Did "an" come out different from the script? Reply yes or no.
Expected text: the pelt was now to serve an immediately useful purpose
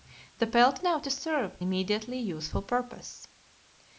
yes